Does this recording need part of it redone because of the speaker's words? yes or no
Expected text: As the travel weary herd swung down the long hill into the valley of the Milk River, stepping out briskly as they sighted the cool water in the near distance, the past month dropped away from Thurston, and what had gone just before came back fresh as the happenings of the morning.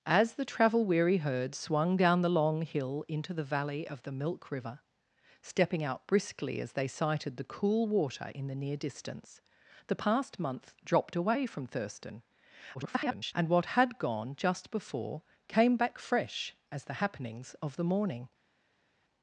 yes